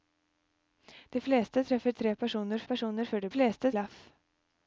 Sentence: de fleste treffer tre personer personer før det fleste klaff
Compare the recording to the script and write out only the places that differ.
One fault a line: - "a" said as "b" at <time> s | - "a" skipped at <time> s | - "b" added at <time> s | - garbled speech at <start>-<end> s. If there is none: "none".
none